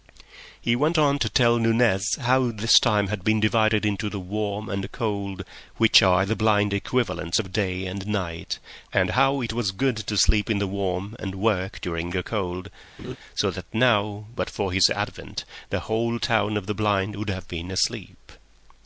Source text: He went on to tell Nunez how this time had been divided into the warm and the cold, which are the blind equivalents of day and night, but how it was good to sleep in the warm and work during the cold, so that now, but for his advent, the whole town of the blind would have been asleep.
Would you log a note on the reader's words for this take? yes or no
yes